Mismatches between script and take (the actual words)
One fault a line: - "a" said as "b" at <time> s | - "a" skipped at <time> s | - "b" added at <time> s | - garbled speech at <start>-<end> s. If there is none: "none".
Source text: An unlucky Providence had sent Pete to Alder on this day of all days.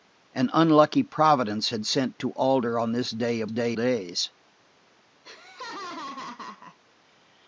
- "Pete" skipped at 2.2 s
- "all" said as "day" at 3.5 s